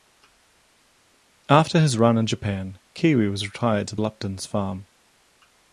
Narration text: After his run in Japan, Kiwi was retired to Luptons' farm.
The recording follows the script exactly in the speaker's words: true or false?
true